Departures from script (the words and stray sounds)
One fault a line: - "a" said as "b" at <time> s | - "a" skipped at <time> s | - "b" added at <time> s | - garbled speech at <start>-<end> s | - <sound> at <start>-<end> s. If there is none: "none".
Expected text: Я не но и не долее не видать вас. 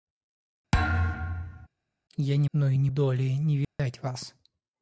- thud at 0.7-1.7 s
- dropout at 3.6-3.8 s